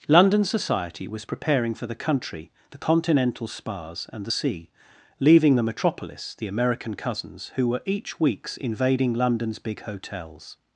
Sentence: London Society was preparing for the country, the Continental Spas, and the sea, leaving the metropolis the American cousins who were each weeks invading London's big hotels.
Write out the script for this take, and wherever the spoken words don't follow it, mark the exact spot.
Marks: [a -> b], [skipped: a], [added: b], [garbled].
London Society was preparing for the country, the Continental Spas, and the sea, leaving the metropolis the American cousins who were each weeks invading London's big hotels.